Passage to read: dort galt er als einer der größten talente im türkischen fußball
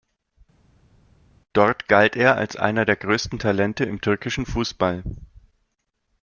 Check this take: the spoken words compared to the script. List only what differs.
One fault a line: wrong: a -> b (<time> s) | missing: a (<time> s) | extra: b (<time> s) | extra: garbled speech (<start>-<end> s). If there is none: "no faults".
no faults